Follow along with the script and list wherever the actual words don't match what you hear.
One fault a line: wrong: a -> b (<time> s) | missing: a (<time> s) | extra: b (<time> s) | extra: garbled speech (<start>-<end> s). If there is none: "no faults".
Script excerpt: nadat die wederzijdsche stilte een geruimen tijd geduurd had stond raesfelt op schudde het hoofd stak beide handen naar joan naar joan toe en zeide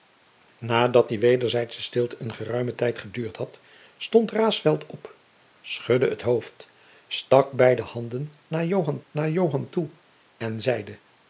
no faults